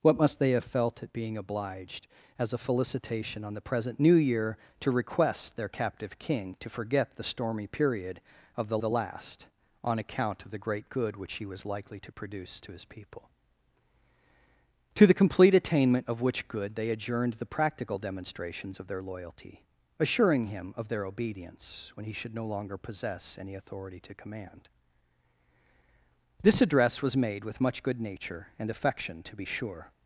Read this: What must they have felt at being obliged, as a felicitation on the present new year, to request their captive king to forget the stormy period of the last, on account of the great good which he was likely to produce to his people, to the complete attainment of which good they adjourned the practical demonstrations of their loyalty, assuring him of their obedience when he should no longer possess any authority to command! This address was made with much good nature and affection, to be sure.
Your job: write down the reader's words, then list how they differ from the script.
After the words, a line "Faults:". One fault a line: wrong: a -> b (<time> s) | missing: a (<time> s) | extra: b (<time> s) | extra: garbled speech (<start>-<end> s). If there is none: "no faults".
What must they have felt at being obliged, as a felicitation on the present new year, to request their captive king to forget the stormy period of the the last, on account of the great good which he was likely to produce to his people, to the complete attainment of which good they adjourned the practical demonstrations of their loyalty, assuring him of their obedience when he should no longer possess any authority to command! This address was made with much good nature and affection, to be sure.
Faults:
extra: the (8.8 s)